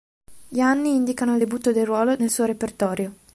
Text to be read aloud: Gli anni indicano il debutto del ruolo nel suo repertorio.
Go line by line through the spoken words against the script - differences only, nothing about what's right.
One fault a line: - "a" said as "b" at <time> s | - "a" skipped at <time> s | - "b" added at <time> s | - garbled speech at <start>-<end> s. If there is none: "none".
none